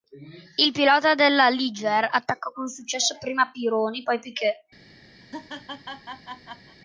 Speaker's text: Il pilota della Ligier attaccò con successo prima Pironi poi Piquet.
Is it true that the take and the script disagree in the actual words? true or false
false